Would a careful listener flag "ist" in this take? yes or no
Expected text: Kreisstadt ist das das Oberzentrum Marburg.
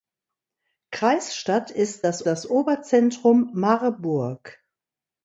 no